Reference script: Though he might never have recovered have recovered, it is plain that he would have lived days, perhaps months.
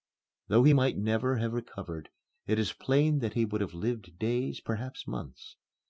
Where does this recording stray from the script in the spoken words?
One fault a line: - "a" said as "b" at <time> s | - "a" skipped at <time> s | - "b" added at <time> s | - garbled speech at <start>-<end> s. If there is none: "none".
- "have recovered" skipped at 2.1 s